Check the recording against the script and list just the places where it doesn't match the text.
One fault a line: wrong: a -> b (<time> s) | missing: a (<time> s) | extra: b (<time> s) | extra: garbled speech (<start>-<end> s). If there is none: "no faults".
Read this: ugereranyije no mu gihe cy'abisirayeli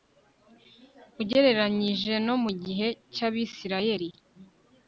no faults